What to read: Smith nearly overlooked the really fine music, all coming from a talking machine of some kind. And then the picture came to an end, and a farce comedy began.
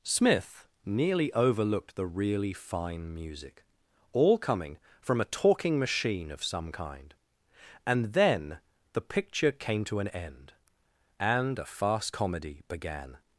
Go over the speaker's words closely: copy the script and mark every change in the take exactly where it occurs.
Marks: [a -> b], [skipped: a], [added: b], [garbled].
Smith nearly overlooked the really fine music, all coming from a talking machine of some kind. And then the picture came to an end, and a [farce -> fast] comedy began.